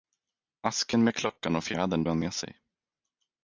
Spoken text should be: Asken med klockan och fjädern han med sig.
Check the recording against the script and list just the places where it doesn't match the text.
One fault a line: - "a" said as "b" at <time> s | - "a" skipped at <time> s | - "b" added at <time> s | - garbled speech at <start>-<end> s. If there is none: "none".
none